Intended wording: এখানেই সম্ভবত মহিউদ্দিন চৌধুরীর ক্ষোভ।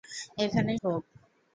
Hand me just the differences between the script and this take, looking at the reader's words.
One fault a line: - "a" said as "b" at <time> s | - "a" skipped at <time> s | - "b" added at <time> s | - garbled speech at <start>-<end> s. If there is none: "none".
- "সম্ভবত মহিউদ্দিন চৌধুরীর" skipped at 0.8 s